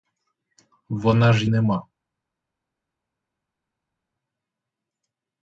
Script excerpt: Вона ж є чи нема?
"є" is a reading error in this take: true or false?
true